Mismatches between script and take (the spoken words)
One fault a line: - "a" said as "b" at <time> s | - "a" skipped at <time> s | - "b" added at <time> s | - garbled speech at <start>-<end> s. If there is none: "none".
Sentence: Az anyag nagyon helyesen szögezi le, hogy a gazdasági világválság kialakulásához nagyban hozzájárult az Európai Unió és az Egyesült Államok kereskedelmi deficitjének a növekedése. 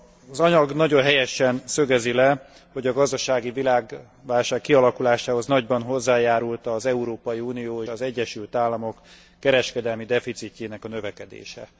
- "és" skipped at 7.8 s